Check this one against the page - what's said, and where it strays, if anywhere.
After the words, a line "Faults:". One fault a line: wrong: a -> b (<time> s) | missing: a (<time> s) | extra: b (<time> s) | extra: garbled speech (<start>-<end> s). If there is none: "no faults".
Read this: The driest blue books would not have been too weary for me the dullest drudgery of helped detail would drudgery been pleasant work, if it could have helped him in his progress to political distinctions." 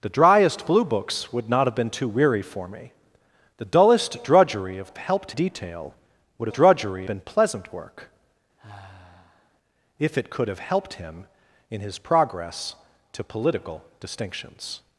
The driest blue books would not have been too weary for me the dullest drudgery of helped detail would drudgery been pleasant work, if it could have helped him in his progress to political distinctions."
Faults:
no faults